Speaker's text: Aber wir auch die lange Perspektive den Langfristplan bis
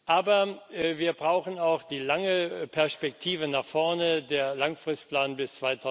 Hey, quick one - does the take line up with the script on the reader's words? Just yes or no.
no